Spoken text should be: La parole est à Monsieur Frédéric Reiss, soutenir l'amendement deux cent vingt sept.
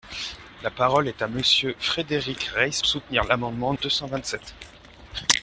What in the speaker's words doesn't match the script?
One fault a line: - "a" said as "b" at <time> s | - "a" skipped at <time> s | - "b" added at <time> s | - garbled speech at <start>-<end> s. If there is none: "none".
none